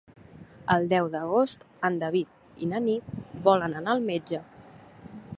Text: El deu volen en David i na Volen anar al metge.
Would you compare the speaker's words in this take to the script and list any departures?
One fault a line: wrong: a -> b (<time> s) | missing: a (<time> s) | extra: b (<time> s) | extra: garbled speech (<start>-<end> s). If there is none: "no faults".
wrong: volen -> d'agost (1.1 s)
extra: Nit (2.9 s)